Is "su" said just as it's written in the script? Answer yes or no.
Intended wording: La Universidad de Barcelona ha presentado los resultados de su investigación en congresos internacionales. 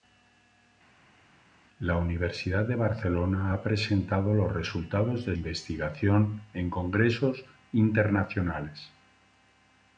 no